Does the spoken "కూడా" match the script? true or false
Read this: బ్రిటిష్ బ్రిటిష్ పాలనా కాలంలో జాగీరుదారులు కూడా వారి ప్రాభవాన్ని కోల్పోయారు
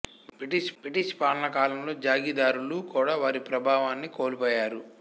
true